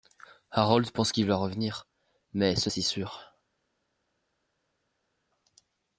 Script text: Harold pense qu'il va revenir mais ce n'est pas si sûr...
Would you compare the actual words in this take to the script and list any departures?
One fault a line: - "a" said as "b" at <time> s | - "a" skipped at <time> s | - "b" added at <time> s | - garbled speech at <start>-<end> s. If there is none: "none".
- "n'est pas" skipped at 2.7 s